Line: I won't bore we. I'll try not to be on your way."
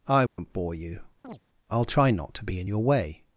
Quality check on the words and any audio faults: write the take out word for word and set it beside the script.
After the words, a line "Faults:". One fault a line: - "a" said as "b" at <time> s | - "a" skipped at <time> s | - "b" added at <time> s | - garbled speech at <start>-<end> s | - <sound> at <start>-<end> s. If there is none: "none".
I won't bore you. I'll try not to be in your way."
Faults:
- dropout at 0.3-0.4 s
- "we" said as "you" at 0.7 s
- chirp at 1.2-1.4 s
- "on" said as "in" at 2.6 s